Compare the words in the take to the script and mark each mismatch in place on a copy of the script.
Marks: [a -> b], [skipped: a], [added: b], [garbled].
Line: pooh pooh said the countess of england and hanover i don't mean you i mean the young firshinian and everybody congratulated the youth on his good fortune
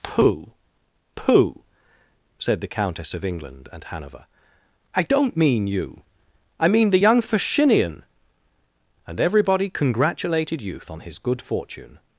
pooh pooh said the countess of england and hanover i don't mean you i mean the young firshinian and everybody congratulated [skipped: the] youth on his good fortune